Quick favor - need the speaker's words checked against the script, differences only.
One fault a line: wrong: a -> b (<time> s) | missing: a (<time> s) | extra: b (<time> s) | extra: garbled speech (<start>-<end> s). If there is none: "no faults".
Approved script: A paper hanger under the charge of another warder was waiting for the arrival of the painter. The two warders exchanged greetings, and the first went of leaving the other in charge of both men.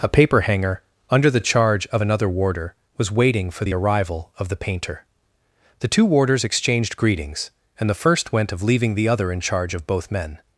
no faults